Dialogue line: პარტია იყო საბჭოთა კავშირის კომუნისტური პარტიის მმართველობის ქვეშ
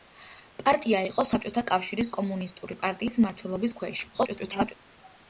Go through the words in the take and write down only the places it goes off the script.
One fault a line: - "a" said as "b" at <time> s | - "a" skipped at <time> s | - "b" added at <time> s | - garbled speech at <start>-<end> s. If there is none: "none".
- garbled speech at 4.1-4.7 s